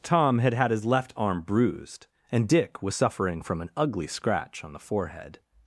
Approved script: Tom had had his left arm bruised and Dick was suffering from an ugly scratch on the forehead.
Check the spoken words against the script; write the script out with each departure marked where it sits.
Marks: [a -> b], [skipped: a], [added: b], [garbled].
Tom had had his left arm bruised and Dick was suffering from an ugly scratch on the forehead.